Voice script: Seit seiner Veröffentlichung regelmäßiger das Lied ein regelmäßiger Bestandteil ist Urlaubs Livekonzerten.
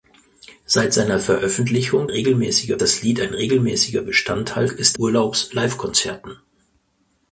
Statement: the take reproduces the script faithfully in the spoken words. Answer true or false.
true